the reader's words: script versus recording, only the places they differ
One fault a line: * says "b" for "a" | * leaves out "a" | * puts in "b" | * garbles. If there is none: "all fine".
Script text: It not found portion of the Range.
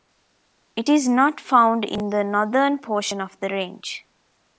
* puts in "is"
* puts in "in the northern"